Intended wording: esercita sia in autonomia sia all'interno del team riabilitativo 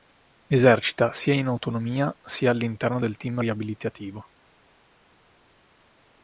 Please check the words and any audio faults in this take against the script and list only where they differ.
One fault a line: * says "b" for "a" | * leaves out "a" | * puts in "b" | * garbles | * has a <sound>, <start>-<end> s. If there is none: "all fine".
all fine